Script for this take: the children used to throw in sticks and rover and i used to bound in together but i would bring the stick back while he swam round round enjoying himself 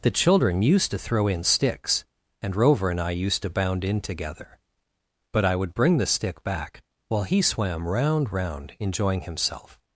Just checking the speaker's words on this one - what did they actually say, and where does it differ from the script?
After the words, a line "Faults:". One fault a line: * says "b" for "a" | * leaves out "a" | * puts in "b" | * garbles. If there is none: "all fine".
the children used to throw in sticks and rover and i used to bound in together but i would bring the stick back while he swam round round enjoying himself
Faults:
all fine